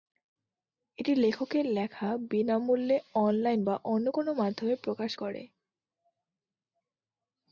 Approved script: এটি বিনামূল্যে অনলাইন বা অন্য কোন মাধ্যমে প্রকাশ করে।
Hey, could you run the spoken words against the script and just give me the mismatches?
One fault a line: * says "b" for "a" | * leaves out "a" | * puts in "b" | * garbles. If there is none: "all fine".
* puts in "লেখকের লেখা"